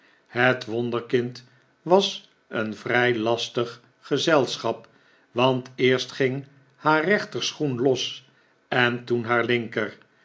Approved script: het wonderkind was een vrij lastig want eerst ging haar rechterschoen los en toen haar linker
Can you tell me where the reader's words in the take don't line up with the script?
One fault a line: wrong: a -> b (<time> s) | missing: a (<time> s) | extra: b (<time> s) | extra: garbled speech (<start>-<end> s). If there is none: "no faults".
extra: gezelschap (4.0 s)